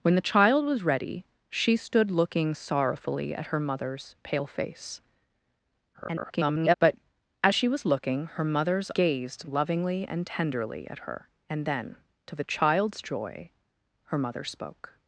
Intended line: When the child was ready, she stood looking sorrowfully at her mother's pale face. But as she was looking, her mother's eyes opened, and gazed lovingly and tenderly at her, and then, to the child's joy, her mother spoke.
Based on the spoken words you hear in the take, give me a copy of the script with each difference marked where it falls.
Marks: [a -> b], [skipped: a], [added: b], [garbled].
When the child was ready, she stood looking sorrowfully at her mother's pale face. [garbled] But as she was looking, her mother's [skipped: eyes opened, and] gazed lovingly and tenderly at her, and then, to the child's joy, her mother spoke.